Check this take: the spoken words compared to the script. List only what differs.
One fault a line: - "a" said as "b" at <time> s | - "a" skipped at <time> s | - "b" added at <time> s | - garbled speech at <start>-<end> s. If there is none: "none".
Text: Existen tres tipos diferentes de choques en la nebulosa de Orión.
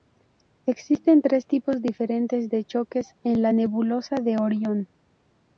none